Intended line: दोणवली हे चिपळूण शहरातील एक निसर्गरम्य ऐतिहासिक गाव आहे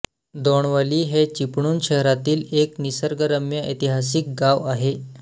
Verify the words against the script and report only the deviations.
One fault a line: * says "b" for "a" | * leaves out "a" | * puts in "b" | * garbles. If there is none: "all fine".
all fine